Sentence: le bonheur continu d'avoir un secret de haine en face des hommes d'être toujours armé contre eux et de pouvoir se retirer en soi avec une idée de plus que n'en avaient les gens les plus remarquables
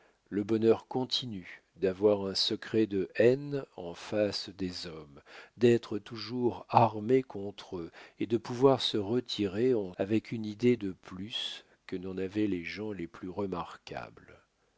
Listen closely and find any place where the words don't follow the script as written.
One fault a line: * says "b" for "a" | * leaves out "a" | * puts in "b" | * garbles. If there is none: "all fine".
* leaves out "soi"